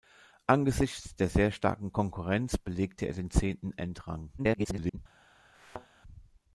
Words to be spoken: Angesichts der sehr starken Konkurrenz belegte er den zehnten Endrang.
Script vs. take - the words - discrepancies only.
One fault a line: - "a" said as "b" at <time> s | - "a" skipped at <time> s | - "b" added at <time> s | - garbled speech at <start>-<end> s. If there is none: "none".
- garbled speech at 4.4-5.0 s